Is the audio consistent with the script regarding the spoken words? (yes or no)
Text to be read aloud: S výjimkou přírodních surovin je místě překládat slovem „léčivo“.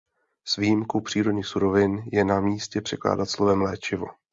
no